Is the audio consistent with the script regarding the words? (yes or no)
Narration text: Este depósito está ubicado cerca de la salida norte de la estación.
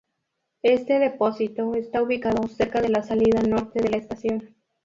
yes